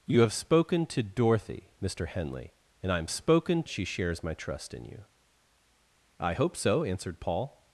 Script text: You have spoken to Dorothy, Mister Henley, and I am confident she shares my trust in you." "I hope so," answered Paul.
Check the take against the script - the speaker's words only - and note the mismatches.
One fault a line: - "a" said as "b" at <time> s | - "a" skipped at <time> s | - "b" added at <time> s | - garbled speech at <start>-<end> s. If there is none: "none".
- "confident" said as "spoken" at 3.1 s